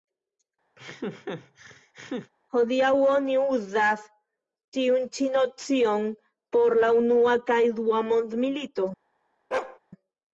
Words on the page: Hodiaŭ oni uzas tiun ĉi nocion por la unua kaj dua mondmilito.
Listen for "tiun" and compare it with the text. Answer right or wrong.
right